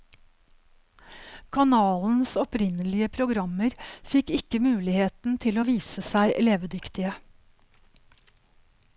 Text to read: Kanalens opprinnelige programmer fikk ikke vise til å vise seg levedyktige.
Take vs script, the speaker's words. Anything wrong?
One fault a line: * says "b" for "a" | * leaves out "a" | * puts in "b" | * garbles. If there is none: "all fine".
* says "muligheten" for "vise"